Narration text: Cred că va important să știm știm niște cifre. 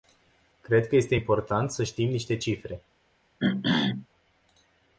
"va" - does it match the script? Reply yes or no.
no